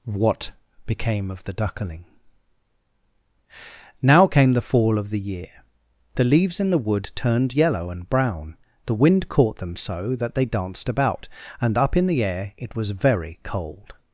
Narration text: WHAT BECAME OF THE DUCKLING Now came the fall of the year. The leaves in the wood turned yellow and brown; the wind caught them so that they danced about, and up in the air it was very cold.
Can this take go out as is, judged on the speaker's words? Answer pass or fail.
pass